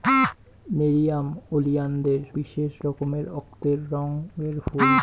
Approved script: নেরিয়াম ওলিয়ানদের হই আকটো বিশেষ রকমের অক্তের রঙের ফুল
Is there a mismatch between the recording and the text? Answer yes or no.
yes